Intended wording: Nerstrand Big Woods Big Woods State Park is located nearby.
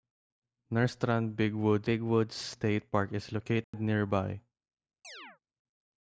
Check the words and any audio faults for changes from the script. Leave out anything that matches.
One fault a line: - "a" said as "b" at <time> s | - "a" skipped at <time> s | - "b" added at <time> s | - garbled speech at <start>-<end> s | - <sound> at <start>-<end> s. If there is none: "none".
- dropout at 3.6-3.7 s
- chirp at 5.0-5.4 s